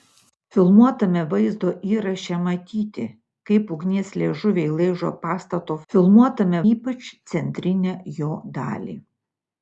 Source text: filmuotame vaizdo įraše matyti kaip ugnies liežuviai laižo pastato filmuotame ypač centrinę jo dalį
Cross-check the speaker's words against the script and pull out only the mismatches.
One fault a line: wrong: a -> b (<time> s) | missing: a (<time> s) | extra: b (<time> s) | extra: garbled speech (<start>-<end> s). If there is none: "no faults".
no faults